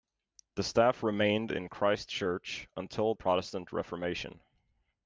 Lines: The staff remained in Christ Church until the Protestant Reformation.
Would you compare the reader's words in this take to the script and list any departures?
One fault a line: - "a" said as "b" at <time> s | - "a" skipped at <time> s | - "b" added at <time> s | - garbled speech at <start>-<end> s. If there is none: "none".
- "the" skipped at 3.1 s